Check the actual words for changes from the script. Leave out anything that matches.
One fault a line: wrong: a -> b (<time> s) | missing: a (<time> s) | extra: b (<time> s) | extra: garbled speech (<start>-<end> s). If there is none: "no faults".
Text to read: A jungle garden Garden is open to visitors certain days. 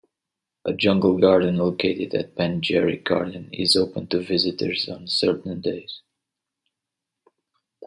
extra: located at Penjerrick (1.6 s)
extra: on (4.9 s)